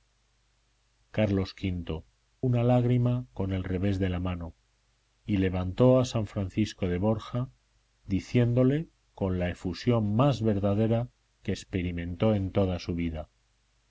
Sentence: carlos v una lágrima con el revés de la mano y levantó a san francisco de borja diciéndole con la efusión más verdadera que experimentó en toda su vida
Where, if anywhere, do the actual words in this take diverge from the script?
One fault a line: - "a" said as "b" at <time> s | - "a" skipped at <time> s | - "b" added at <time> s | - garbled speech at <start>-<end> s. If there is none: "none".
none